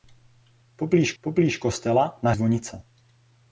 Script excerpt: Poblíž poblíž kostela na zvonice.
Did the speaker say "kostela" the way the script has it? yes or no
yes